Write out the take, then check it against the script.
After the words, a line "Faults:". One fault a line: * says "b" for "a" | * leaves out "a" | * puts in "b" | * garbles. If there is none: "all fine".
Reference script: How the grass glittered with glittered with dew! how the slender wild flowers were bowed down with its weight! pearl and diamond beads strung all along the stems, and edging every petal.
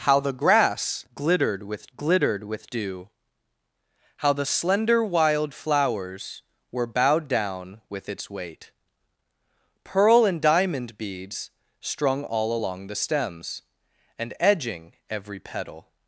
How the grass glittered with glittered with dew! how the slender wild flowers were bowed down with its weight! pearl and diamond beads strung all along the stems, and edging every petal.
Faults:
all fine